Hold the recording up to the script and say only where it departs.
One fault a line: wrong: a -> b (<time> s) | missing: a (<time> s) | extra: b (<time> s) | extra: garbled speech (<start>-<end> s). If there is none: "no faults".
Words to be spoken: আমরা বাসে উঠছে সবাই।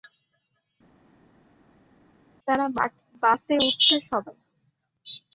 wrong: আমরা -> তারা (2.5 s)